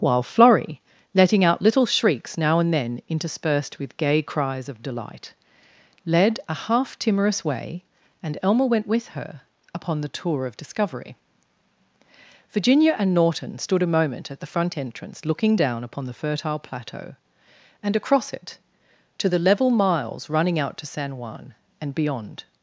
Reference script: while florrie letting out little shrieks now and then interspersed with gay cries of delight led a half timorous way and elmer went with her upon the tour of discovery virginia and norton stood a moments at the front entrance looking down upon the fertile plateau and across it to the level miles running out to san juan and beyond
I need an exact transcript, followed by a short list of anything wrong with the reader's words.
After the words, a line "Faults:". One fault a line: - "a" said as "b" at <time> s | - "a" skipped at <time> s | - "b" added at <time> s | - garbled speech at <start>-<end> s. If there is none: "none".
while florrie letting out little shrieks now and then interspersed with gay cries of delight led a half timorous way and elmer went with her upon the tour of discovery virginia and norton stood a moment at the front entrance looking down upon the fertile plateau and across it to the level miles running out to san juan and beyond
Faults:
- "moments" said as "moment" at 13.9 s